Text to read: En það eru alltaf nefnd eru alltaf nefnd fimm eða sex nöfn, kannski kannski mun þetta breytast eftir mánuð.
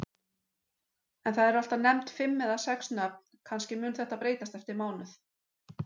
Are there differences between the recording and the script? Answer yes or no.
yes